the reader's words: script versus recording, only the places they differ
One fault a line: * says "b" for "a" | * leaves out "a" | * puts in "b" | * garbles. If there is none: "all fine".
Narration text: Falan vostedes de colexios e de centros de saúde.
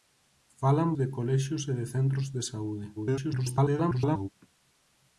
* leaves out "vostedes"
* garbles